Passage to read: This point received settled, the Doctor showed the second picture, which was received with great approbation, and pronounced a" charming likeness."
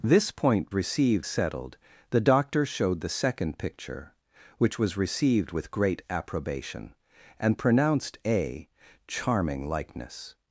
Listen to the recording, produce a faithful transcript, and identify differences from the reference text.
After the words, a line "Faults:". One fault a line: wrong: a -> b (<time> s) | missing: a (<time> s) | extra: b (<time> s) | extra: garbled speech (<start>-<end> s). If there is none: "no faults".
This point received settled, the Doctor showed the second picture, which was received with great approbation, and pronounced a" charming likeness."
Faults:
no faults